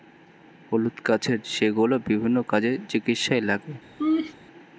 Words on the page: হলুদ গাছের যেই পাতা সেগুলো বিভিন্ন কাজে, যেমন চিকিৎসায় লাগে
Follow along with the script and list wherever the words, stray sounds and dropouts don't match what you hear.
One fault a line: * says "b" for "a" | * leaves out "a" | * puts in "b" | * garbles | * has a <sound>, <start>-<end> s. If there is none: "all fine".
* leaves out "যেই পাতা"
* leaves out "যেমন"
* has a laugh, 4.0-4.3 s